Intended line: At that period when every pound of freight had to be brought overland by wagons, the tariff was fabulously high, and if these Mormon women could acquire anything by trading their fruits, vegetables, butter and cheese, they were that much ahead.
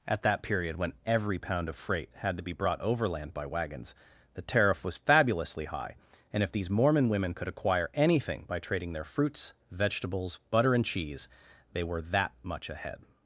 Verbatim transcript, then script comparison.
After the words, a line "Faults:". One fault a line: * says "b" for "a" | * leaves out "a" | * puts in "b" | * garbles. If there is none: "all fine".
At that period when every pound of freight had to be brought overland by wagons, the tariff was fabulously high, and if these Mormon women could acquire anything by trading their fruits, vegetables, butter and cheese, they were that much ahead.
Faults:
all fine